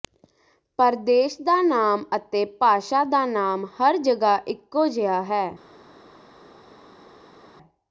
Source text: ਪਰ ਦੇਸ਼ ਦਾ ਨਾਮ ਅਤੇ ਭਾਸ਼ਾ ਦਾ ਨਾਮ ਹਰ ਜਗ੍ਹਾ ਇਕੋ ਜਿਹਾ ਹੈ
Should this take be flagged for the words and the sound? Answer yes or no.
no